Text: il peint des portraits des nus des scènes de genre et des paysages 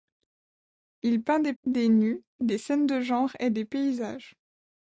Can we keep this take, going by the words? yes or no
no